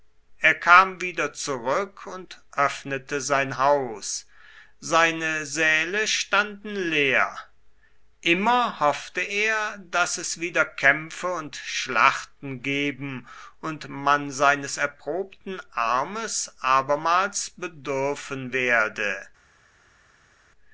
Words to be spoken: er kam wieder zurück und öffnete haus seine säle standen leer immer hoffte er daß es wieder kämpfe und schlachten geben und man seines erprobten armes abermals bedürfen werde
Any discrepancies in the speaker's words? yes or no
yes